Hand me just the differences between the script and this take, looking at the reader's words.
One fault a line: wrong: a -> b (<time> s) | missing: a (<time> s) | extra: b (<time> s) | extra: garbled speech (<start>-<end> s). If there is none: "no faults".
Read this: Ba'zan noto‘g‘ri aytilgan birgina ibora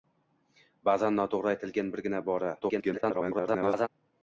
extra: garbled speech (2.6-3.9 s)